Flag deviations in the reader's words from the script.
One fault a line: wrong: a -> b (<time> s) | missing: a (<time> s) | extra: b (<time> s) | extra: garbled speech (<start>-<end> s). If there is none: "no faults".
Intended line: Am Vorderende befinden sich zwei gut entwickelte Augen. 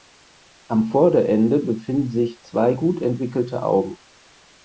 no faults